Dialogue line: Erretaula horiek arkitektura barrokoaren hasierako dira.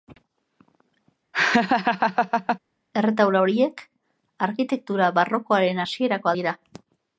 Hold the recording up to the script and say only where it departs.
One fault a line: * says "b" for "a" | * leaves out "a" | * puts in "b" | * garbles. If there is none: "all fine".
all fine